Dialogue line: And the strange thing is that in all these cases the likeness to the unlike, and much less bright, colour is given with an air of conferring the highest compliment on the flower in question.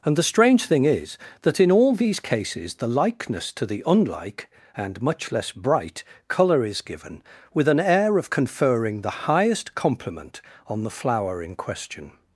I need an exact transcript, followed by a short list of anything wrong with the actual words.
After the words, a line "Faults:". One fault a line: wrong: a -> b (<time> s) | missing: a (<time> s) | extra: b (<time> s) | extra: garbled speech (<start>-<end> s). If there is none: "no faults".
And the strange thing is that in all these cases the likeness to the unlike, and much less bright, colour is given with an air of conferring the highest compliment on the flower in question.
Faults:
no faults